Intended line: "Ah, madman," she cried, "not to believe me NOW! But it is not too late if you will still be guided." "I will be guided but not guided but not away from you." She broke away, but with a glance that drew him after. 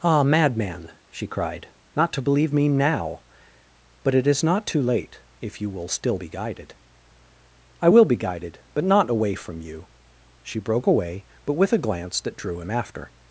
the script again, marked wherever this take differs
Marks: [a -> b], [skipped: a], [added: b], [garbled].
"Ah, madman," she cried, "not to believe me NOW! But it is not too late if you will still be guided." "I will be guided but not [skipped: guided but not] away from you." She broke away, but with a glance that drew him after.